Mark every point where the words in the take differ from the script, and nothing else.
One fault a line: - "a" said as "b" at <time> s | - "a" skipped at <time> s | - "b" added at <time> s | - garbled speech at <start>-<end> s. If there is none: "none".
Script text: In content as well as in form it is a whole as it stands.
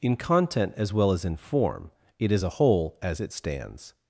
none